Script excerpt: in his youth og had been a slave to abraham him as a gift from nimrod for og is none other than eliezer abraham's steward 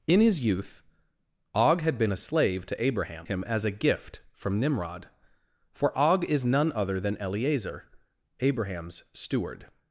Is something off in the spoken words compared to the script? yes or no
no